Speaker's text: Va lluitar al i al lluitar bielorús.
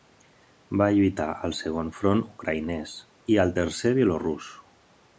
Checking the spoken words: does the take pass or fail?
fail